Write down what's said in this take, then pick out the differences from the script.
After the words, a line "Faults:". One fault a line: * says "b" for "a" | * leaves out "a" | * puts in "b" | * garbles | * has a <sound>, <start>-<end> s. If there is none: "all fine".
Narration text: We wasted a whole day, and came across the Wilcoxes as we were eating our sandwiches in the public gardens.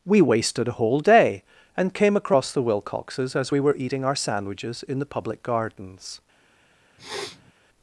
We wasted a whole day, and came across the Wilcoxes as we were eating our sandwiches in the public gardens.
Faults:
* has a sniff, 7.0-7.5 s